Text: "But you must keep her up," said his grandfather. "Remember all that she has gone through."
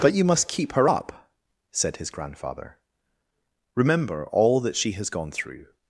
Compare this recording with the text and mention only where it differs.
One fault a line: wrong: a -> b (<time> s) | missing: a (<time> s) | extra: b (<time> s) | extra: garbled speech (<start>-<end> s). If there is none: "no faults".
no faults